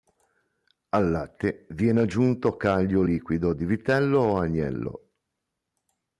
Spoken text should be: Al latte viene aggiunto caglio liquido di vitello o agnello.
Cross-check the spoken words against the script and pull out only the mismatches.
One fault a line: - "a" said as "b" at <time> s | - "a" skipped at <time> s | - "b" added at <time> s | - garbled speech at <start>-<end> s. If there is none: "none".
none